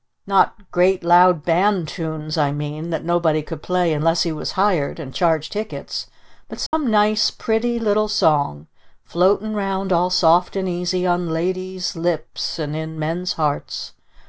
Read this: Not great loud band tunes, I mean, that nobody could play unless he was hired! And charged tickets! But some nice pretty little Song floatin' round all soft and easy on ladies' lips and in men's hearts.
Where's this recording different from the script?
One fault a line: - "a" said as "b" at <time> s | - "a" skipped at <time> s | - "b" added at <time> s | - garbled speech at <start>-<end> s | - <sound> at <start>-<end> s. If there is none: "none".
- dropout at 6.7-6.7 s